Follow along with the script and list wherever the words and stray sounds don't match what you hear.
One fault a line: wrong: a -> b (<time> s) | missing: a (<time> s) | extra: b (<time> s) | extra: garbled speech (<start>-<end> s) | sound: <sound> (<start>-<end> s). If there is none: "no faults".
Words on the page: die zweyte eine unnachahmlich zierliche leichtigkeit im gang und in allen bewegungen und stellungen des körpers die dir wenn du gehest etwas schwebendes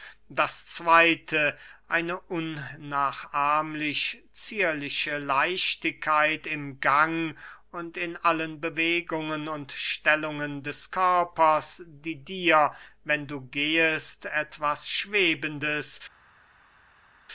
wrong: die -> das (0.3 s)